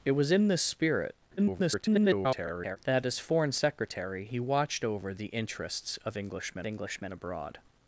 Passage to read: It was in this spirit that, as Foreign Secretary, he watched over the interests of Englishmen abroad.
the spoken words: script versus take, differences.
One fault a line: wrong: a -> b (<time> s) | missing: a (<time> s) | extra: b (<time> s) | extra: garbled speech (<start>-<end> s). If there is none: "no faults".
extra: garbled speech (1.4-2.8 s)
extra: Englishmen (6.7 s)